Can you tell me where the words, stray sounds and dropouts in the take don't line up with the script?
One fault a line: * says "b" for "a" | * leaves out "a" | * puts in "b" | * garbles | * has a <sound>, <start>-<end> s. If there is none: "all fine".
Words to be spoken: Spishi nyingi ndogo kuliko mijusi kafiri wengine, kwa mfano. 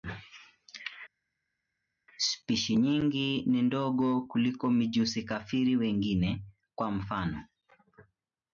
* puts in "ni"